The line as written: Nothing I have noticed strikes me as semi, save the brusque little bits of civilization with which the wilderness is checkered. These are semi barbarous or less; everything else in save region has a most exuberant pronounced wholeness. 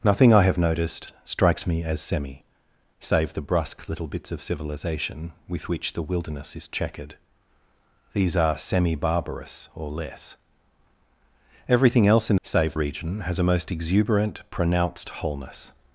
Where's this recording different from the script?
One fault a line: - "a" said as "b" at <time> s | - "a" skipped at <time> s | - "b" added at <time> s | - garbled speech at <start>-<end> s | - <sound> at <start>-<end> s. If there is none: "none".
none